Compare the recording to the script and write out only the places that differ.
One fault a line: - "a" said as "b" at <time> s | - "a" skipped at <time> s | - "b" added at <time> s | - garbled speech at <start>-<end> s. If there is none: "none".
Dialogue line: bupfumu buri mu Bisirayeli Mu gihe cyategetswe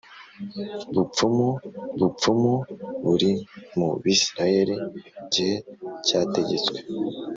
- "bupfumu" added at 2.0 s
- "Mu" skipped at 4.8 s